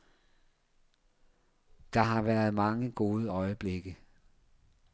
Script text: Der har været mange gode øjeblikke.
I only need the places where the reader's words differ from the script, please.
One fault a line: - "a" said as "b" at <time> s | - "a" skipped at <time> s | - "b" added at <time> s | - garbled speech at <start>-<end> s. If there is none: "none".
none